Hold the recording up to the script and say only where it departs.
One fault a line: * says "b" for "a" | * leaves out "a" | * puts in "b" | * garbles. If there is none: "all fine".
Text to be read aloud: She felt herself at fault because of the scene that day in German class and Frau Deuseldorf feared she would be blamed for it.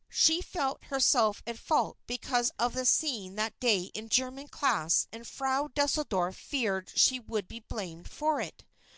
all fine